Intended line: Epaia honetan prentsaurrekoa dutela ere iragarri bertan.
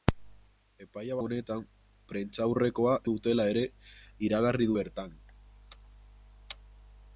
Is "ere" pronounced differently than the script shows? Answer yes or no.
no